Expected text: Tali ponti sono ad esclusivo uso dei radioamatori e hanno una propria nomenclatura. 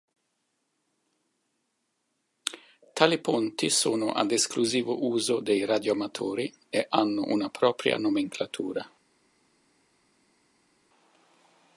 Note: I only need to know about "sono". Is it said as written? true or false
true